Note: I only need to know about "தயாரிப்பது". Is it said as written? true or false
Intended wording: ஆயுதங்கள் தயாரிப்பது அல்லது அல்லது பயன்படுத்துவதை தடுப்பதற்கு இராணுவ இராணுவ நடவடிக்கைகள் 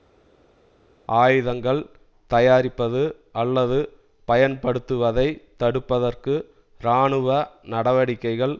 true